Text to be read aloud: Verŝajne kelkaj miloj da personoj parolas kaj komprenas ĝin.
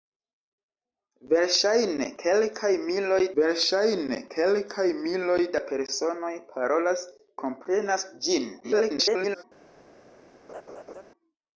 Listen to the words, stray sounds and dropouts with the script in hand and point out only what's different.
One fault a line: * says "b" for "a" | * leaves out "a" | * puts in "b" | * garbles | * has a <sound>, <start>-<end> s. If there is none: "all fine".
* puts in "verŝajne kelkaj miloj"
* leaves out "kaj"
* garbles
* has a laugh, 10.5-11.0 s